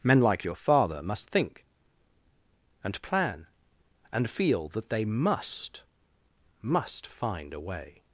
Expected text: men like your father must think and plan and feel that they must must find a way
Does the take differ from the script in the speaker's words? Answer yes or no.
no